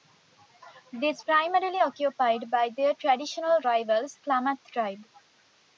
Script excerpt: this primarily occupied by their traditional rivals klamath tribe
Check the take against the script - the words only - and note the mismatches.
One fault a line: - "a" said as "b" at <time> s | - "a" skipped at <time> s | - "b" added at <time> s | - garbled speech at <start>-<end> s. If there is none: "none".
none